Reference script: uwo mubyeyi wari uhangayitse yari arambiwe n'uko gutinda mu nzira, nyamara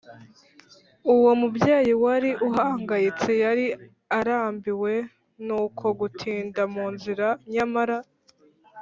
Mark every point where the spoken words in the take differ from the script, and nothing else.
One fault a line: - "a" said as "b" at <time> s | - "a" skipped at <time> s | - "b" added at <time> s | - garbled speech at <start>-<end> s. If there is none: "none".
none